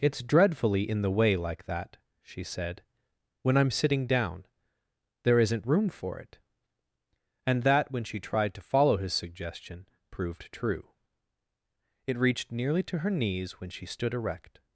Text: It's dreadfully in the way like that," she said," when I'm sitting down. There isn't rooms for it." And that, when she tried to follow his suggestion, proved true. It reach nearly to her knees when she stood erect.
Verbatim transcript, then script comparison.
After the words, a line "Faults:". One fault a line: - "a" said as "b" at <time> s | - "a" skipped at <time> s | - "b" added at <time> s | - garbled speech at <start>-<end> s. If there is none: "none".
It's dreadfully in the way like that," she said," when I'm sitting down. There isn't room for it." And that, when she tried to follow his suggestion, proved true. It reached nearly to her knees when she stood erect.
Faults:
- "rooms" said as "room" at 5.7 s
- "reach" said as "reached" at 12.2 s